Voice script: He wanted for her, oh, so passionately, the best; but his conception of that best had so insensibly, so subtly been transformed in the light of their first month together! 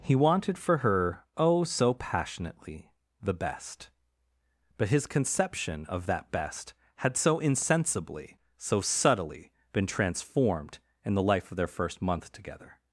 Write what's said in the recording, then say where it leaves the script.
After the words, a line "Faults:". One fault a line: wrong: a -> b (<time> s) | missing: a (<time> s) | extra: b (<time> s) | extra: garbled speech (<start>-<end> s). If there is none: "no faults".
He wanted for her, oh, so passionately, the best; but his conception of that best had so insensibly, so subtly been transformed in the life of their first month together!
Faults:
wrong: light -> life (11.2 s)